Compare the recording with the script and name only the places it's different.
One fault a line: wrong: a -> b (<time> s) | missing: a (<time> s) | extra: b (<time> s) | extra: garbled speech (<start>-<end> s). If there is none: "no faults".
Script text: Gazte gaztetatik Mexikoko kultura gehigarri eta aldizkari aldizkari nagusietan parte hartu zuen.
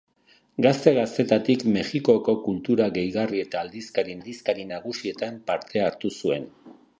no faults